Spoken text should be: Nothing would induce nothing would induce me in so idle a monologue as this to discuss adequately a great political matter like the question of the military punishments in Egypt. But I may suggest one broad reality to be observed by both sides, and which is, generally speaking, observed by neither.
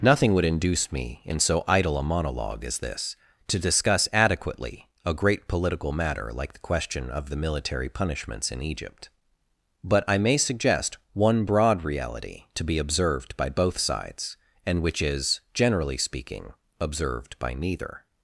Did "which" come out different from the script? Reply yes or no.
no